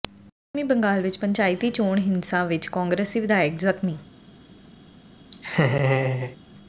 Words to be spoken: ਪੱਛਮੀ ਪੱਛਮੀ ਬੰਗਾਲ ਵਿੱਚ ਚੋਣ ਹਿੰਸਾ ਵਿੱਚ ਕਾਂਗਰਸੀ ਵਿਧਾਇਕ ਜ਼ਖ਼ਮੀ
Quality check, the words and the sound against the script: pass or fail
fail